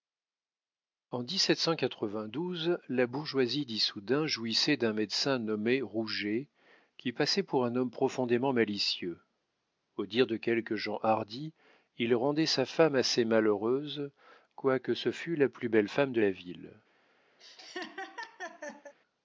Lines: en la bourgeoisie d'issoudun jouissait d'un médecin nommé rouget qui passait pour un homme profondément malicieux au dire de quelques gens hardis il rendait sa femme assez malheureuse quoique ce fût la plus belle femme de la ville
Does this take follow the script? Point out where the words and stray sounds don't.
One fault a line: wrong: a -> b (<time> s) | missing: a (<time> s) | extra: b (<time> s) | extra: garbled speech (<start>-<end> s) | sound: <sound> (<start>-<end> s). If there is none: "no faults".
sound: laugh (17.4-18.9 s)